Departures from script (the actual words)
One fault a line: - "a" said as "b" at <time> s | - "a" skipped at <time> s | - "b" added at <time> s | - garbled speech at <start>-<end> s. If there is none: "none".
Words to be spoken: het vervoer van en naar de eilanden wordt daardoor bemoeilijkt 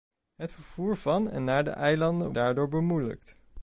- "wordt" skipped at 2.3 s